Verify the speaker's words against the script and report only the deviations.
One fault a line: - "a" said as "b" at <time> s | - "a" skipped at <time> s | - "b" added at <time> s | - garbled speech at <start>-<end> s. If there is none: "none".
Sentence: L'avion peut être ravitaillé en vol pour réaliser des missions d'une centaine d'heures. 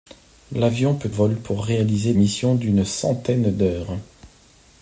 - "être ravitaillé en" skipped at 1.1 s
- "des" skipped at 2.1 s